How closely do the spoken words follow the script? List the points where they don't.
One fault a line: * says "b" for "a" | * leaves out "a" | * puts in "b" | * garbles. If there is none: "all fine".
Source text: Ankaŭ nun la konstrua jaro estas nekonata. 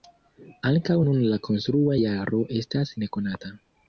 all fine